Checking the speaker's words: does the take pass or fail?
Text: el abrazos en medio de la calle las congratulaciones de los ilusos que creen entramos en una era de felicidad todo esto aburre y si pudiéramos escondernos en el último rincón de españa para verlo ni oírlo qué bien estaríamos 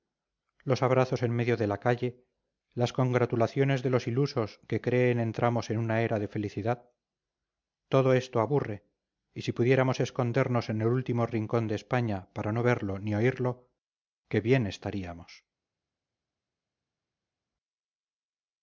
fail